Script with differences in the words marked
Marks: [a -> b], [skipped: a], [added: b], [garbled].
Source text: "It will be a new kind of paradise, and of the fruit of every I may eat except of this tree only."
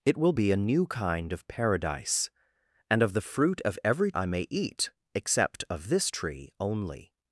"It will be a new kind of paradise, and of the fruit of every I may eat except of this tree only."